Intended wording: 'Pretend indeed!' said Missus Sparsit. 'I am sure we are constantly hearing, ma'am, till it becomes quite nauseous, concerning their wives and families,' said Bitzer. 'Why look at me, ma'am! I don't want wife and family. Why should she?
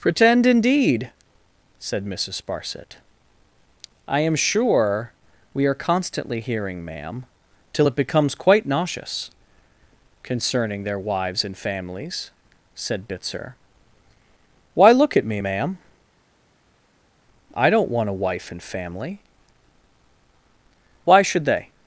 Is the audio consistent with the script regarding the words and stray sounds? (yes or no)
no